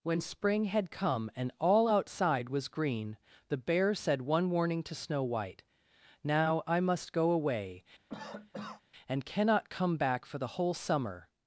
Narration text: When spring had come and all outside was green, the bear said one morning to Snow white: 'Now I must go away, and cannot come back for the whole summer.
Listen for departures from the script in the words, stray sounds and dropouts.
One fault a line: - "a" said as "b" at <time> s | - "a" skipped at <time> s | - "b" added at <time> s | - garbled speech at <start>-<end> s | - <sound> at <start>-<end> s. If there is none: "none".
- "morning" said as "warning" at 4.5 s
- cough at 8.1-8.8 s